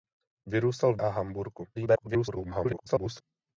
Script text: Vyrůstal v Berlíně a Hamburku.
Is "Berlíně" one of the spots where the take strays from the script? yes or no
yes